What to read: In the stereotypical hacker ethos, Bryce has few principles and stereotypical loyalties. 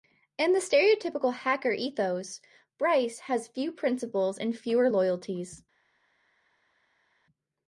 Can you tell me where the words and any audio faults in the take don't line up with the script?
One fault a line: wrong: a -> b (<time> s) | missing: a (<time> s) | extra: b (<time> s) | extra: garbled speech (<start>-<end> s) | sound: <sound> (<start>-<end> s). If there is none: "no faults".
wrong: stereotypical -> fewer (4.6 s)